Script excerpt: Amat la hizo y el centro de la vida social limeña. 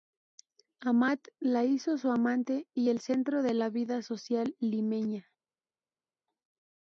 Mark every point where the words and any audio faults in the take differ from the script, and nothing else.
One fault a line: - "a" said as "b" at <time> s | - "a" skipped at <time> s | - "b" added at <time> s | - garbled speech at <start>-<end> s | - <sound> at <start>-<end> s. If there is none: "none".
- "su amante" added at 1.9 s